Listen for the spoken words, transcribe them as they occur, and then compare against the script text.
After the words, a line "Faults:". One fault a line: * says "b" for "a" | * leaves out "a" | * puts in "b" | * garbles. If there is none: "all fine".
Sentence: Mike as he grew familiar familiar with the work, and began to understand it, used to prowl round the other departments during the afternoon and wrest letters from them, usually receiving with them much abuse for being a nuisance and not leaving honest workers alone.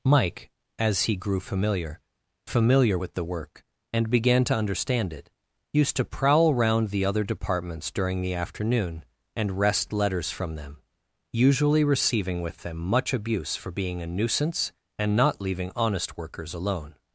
Mike as he grew familiar familiar with the work, and began to understand it, used to prowl round the other departments during the afternoon and wrest letters from them, usually receiving with them much abuse for being a nuisance and not leaving honest workers alone.
Faults:
all fine